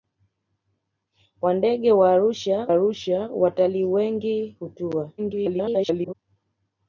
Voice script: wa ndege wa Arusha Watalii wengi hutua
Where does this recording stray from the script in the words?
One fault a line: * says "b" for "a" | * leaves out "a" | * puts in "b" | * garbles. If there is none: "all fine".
* puts in "Arusha"
* garbles